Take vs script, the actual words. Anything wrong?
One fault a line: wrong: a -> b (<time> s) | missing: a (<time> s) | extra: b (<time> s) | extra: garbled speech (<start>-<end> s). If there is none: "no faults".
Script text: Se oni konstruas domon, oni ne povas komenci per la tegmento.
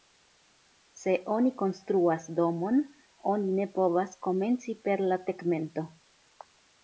no faults